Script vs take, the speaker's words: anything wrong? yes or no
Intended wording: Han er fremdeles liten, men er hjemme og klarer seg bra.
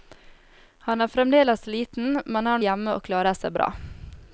no